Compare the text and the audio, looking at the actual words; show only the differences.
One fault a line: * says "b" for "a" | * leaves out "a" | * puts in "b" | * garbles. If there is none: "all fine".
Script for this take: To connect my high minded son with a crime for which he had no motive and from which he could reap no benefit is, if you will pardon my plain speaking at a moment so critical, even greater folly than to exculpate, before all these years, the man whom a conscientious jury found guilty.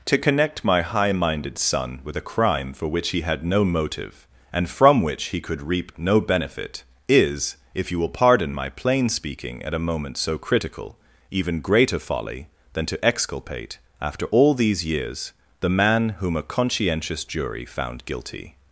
* says "after" for "before"